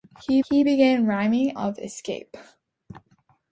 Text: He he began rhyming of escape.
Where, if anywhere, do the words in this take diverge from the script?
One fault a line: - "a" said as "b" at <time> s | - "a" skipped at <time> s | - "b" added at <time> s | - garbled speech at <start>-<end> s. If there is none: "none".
none